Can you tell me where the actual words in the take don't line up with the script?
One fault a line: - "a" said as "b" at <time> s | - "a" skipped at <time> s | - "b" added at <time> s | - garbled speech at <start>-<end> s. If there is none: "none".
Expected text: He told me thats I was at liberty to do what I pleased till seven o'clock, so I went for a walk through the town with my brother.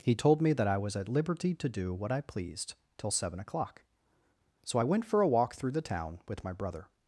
- "thats" said as "that" at 0.5 s